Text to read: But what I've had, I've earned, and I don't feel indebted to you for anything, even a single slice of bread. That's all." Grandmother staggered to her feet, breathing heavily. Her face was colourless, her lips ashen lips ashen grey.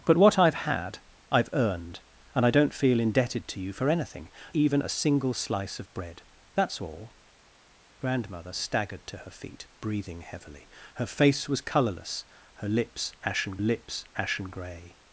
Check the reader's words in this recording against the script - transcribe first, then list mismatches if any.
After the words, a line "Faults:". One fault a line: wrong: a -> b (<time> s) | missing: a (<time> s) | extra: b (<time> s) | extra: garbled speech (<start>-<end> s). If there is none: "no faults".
But what I've had, I've earned, and I don't feel indebted to you for anything, even a single slice of bread. That's all." Grandmother staggered to her feet, breathing heavily. Her face was colourless, her lips ashen lips ashen grey.
Faults:
no faults